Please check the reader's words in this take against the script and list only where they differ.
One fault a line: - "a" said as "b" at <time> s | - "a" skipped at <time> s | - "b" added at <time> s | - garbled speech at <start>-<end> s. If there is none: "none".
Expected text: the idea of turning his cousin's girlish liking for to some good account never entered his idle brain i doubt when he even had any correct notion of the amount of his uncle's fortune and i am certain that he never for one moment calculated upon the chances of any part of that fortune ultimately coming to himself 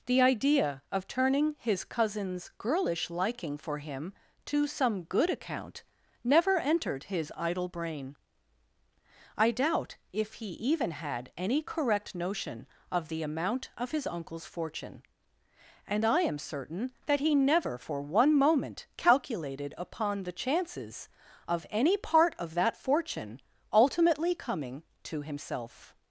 - "him" added at 3.8 s
- "when" said as "if" at 10.1 s